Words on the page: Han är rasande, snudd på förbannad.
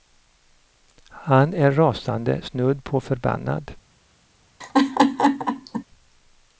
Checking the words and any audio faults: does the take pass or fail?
fail